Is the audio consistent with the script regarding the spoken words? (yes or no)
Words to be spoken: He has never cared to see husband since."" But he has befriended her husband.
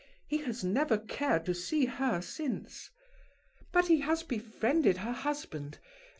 no